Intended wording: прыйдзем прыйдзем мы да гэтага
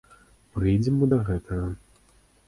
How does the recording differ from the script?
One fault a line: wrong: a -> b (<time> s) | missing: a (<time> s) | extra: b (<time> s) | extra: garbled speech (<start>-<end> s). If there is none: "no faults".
missing: прыйдзем (0.9 s)